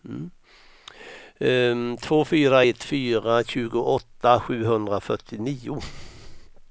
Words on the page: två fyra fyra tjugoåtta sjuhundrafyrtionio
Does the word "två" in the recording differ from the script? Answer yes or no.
no